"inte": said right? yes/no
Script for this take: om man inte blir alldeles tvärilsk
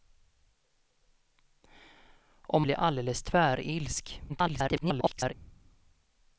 no